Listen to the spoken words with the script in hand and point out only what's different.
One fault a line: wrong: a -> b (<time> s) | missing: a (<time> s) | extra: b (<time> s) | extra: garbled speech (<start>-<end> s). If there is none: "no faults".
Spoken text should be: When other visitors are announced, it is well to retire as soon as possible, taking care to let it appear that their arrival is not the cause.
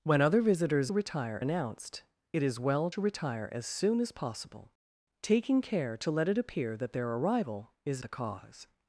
wrong: are -> retire (0.9 s)
missing: not (8.0 s)